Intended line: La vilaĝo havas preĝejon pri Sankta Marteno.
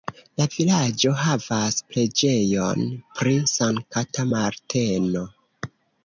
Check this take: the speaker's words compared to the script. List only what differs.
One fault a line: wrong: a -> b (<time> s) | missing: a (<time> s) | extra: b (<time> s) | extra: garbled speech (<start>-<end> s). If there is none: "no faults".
no faults